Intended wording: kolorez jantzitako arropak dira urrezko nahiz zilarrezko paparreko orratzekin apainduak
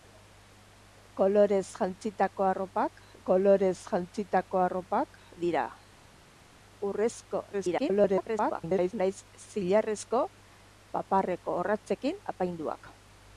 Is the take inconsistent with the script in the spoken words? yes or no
yes